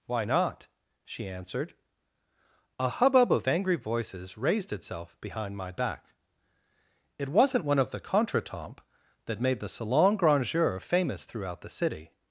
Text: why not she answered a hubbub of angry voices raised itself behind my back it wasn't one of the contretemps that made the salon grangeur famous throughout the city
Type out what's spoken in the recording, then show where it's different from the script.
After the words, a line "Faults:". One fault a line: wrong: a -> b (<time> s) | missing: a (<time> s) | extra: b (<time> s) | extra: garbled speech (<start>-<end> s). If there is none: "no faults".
why not she answered a hubbub of angry voices raised itself behind my back it wasn't one of the contretemps that made the salon grangeur famous throughout the city
Faults:
no faults